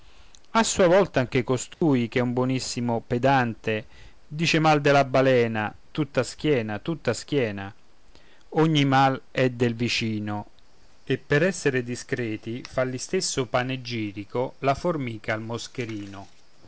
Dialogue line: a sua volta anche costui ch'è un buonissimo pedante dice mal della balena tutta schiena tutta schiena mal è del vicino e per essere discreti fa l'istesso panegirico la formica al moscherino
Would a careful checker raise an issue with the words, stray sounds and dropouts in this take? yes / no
yes